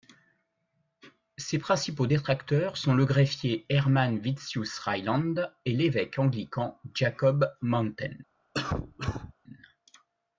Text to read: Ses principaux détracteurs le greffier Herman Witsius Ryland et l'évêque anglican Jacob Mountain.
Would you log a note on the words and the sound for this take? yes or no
yes